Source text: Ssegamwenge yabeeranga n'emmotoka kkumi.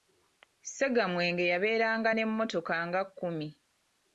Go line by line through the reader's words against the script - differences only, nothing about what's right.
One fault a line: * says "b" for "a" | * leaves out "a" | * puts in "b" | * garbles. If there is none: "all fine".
* puts in "nga"